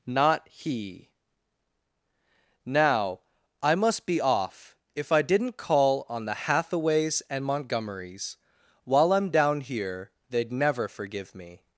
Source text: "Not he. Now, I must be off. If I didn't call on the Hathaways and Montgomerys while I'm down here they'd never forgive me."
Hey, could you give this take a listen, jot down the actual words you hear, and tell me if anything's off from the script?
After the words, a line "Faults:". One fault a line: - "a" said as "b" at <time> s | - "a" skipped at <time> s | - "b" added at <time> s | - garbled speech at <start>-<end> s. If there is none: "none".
"Not he. Now, I must be off. If I didn't call on the Hathaways and Montgomerys while I'm down here they'd never forgive me."
Faults:
none